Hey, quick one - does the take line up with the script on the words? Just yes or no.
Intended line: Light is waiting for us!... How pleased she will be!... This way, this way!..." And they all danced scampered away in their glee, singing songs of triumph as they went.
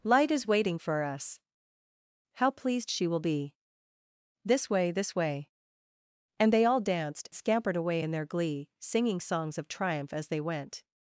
yes